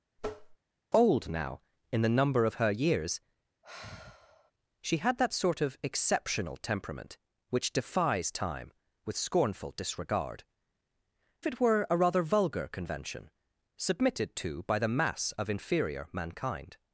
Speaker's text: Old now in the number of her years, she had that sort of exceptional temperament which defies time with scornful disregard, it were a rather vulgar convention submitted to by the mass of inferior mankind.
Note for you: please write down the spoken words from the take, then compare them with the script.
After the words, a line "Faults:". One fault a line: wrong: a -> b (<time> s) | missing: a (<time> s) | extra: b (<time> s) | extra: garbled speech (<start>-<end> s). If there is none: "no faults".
Old now in the number of her years, she had that sort of exceptional temperament which defies time with scornful disregard, it were a rather vulgar convention submitted to by the mass of inferior mankind.
Faults:
no faults